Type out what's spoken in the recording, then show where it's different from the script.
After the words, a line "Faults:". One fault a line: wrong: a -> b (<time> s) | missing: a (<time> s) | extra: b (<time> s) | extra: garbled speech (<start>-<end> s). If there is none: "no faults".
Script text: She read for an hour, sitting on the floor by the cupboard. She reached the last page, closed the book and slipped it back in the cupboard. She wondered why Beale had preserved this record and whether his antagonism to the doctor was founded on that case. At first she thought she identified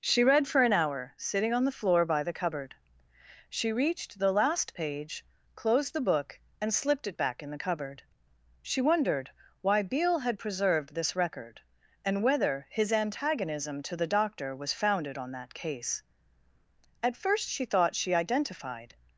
She read for an hour, sitting on the floor by the cupboard. She reached the last page, closed the book and slipped it back in the cupboard. She wondered why Beale had preserved this record and whether his antagonism to the doctor was founded on that case. At first she thought she identified
Faults:
no faults